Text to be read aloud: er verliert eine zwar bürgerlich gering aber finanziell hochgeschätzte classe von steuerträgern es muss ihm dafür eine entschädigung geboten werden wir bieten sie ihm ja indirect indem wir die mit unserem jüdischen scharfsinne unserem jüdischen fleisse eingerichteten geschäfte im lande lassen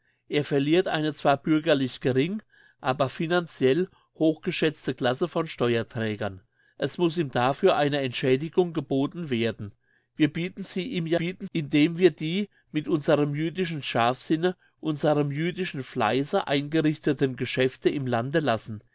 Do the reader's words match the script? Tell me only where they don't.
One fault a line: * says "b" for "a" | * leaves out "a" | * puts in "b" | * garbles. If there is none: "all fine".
* says "bieten" for "indirect"